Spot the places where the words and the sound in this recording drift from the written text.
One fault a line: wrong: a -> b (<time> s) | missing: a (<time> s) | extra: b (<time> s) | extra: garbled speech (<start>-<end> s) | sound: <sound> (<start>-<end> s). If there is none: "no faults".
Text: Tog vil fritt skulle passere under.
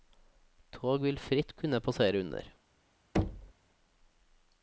wrong: skulle -> kunne (1.6 s)
sound: thud (3.1-3.5 s)